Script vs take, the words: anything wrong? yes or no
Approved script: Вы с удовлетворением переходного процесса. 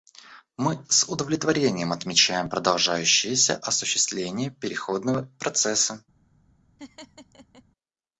yes